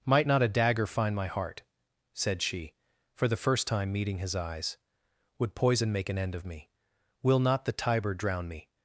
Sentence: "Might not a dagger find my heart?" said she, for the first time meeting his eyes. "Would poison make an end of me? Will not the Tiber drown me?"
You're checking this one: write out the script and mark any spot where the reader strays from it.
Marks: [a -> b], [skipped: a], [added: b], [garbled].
"Might not a dagger find my heart?" said she, for the first time meeting his eyes. "Would poison make an end of me? Will not the Tiber drown me?"